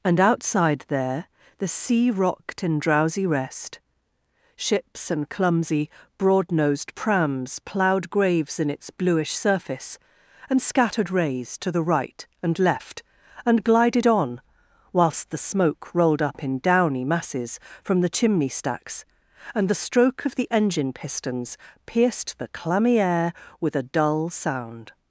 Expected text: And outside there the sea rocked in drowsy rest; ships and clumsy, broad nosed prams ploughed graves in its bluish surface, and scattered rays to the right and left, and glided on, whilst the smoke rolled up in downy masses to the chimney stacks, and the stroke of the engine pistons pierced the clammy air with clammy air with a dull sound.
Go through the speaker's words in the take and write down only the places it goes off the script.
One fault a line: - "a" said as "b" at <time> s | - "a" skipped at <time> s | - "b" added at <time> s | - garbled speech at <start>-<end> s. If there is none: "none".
- "to" said as "from" at 17.8 s
- "clammy air with" skipped at 23.8 s